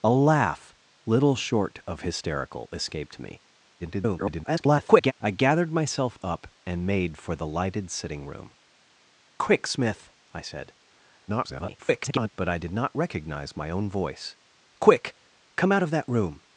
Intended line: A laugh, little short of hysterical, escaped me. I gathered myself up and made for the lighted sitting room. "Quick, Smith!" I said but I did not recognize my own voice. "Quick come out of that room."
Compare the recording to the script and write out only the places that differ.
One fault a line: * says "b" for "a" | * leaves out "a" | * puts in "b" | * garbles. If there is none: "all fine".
* garbles
* garbles